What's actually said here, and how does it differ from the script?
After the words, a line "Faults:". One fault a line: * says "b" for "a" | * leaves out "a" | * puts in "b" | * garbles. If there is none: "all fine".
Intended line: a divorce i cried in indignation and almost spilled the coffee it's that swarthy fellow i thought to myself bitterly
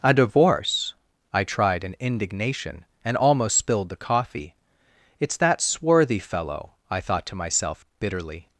a divorce i tried in indignation and almost spilled the coffee it's that swarthy fellow i thought to myself bitterly
Faults:
* says "tried" for "cried"